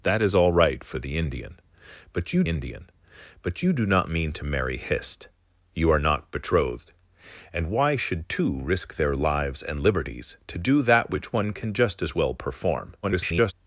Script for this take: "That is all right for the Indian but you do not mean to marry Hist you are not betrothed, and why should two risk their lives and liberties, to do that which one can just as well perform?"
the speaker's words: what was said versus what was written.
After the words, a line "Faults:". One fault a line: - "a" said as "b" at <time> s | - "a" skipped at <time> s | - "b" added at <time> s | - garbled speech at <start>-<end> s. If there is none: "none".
"That is all right for the Indian but you Indian but you do not mean to marry Hist you are not betrothed, and why should two risk their lives and liberties, to do that which one can just as well perform?" [garbled]
Faults:
- "Indian but you" added at 2.5 s
- garbled speech at 13.0-13.5 s